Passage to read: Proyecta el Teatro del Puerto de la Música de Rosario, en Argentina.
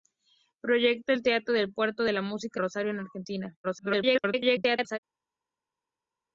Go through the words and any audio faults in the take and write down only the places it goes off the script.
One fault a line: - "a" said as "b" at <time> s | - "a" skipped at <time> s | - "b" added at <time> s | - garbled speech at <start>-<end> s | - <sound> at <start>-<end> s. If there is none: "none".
- "de" skipped at 2.6 s
- garbled speech at 3.6-5.0 s